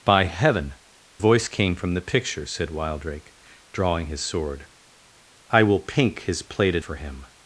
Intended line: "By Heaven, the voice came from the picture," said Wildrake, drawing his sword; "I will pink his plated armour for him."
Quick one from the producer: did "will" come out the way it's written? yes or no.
yes